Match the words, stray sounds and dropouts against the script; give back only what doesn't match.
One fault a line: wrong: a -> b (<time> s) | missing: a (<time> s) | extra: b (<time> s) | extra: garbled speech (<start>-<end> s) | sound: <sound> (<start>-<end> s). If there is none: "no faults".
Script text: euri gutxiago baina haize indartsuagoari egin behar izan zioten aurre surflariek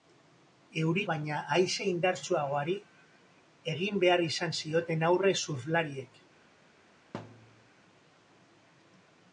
missing: gutxiago (1.0 s)
sound: thud (7.1-7.7 s)